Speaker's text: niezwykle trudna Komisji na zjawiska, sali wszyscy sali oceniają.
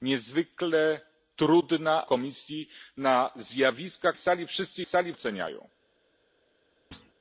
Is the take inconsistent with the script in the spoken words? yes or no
no